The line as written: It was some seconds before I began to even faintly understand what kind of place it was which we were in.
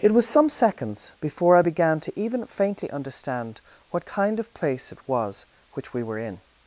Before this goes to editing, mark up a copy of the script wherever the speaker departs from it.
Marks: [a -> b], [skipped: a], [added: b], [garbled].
It was some seconds before I began to even faintly understand what kind of place it was which we were in.